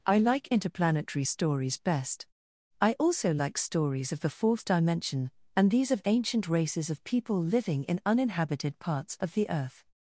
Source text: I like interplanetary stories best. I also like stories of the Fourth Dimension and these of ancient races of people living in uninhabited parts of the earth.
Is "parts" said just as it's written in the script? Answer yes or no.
yes